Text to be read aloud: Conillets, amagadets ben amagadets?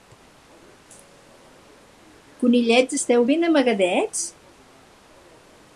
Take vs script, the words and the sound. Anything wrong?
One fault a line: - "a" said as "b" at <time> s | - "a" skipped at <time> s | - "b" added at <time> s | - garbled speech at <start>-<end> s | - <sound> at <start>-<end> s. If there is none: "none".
- "amagadets" said as "esteu" at 3.0 s